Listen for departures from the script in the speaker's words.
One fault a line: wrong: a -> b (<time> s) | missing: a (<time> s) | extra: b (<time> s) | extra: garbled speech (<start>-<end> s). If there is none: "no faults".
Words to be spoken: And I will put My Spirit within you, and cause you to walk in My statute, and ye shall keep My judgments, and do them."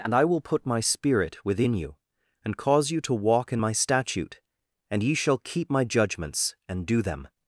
no faults